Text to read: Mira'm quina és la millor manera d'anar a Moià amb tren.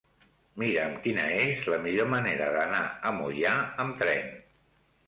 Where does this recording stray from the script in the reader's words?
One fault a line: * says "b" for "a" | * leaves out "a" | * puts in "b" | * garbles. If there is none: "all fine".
all fine